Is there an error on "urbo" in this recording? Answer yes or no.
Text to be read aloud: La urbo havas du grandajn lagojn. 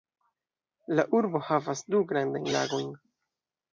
no